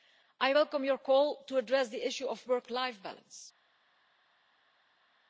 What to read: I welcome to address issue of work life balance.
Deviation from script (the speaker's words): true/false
true